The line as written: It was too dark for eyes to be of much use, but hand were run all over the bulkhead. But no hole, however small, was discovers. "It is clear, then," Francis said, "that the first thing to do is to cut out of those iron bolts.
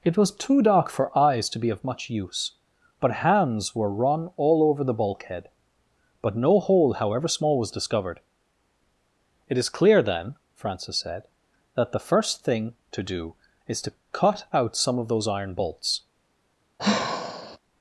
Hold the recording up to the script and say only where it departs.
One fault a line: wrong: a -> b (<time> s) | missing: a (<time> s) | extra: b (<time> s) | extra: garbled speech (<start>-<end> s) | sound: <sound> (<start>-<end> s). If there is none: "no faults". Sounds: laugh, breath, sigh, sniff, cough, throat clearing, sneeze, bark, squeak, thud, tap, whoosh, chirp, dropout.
wrong: hand -> hands (3.2 s)
wrong: discovers -> discovered (7.7 s)
extra: some (14.8 s)
sound: sigh (16.8-17.6 s)